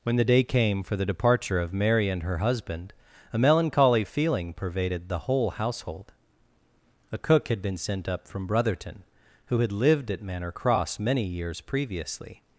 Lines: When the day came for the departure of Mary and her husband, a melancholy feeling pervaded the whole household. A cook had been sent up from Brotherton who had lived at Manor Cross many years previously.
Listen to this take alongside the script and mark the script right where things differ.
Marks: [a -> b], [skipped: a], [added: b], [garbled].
When the day came for the departure of Mary and her husband, a melancholy feeling pervaded the whole household. A cook had been sent up from Brotherton who had lived at Manor Cross many years previously.